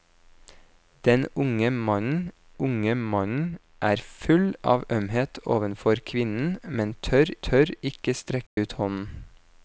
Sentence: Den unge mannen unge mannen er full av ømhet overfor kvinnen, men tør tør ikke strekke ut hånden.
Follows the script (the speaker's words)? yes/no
yes